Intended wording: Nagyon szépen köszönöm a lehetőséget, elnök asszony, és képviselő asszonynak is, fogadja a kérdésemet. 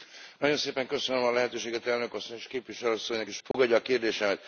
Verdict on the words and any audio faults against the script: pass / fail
fail